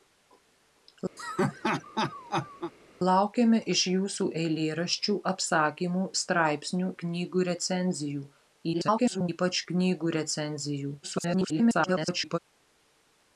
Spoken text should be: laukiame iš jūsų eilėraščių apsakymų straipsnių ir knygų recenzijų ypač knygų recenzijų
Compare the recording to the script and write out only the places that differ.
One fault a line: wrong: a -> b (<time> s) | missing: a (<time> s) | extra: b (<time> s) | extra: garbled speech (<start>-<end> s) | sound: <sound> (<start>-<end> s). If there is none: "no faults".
sound: laugh (1.2-2.7 s)
missing: ir (6.9 s)
extra: garbled speech (8.7-9.3 s)
extra: garbled speech (11.0-12.4 s)